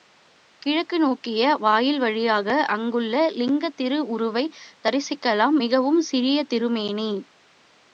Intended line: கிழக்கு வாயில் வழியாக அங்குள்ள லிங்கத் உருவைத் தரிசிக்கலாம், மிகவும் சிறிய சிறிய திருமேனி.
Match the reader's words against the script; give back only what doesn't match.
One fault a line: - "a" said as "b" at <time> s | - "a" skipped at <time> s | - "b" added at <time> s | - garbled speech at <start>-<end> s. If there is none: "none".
- "நோக்கிய" added at 1.0 s
- "திரு" added at 3.8 s
- "சிறிய" skipped at 6.4 s